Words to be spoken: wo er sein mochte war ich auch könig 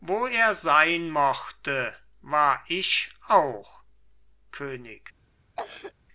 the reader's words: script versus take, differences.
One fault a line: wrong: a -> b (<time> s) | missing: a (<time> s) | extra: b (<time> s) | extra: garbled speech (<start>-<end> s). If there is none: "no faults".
no faults